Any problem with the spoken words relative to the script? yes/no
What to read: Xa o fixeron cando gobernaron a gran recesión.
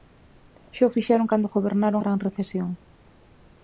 yes